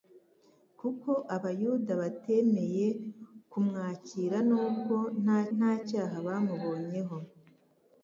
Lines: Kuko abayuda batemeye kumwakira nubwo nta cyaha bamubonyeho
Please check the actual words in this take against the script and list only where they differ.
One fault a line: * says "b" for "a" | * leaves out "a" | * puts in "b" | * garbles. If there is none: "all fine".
* puts in "nta"